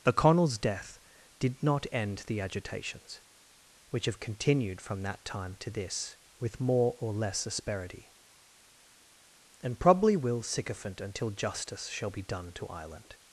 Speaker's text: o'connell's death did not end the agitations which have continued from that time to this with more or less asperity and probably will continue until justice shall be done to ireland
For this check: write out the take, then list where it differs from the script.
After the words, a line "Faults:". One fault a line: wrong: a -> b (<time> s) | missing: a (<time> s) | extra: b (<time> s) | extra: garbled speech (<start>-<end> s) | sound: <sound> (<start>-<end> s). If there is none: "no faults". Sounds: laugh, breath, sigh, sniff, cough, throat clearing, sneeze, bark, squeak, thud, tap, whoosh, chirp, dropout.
o'connell's death did not end the agitations which have continued from that time to this with more or less asperity and probably will sycophant until justice shall be done to ireland
Faults:
wrong: continue -> sycophant (10.4 s)